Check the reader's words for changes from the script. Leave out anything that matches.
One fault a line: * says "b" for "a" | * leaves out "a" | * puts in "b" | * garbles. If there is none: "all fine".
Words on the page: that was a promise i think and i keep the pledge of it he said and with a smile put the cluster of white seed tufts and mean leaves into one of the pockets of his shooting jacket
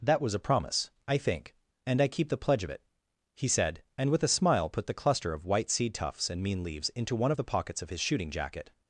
all fine